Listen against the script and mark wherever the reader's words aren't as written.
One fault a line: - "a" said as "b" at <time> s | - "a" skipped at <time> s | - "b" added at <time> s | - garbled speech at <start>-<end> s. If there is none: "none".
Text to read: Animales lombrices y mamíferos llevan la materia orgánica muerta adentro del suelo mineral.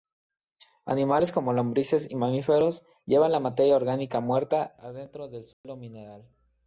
- "como" added at 1.3 s